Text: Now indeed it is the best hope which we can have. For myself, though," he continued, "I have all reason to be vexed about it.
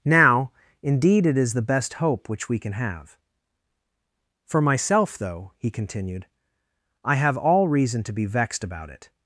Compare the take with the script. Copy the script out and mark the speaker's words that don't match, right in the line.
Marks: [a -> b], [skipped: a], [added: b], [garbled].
Now indeed it is the best hope which we can have. For myself, though," he continued, "I have all reason to be vexed about it.